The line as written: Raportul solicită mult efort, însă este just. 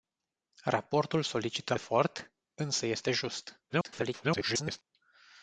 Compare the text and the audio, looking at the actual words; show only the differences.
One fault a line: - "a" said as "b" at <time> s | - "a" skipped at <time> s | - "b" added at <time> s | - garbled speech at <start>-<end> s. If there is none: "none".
- "mult" skipped at 1.8 s
- garbled speech at 3.7-4.8 s